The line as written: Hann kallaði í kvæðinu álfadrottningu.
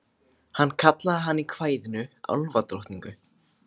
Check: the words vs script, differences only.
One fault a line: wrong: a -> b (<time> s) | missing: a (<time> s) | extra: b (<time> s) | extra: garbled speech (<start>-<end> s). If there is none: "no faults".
extra: hana (1.3 s)